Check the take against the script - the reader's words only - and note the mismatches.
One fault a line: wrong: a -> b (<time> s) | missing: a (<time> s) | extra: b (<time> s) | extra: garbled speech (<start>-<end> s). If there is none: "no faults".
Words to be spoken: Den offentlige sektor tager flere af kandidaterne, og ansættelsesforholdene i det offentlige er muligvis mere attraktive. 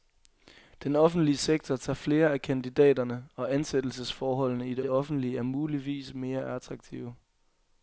extra: det (4.8 s)